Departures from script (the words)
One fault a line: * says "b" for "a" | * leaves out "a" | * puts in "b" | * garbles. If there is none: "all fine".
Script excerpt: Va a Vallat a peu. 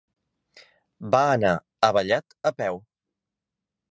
* puts in "anar"